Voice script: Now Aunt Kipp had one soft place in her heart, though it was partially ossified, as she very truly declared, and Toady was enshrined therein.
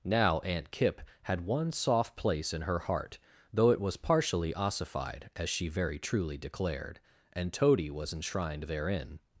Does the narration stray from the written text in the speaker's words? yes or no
no